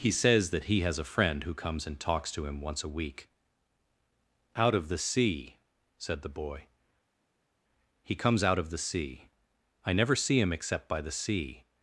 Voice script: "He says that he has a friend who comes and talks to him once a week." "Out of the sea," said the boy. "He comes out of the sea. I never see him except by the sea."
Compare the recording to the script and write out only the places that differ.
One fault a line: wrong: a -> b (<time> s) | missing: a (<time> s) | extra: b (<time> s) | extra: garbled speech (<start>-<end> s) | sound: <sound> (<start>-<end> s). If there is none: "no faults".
no faults